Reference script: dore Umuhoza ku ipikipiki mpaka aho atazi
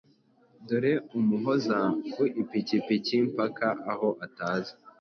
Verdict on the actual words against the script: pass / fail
pass